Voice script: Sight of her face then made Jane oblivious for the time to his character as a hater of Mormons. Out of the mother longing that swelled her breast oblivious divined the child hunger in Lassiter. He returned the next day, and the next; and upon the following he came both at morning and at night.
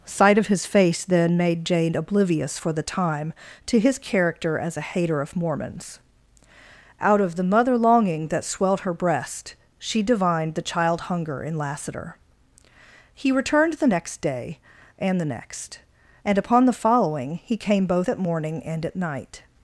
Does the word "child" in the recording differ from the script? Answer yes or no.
no